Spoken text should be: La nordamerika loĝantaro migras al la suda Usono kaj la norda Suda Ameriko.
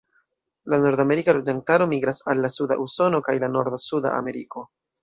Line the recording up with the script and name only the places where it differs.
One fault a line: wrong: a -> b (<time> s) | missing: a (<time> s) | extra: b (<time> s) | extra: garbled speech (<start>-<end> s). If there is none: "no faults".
no faults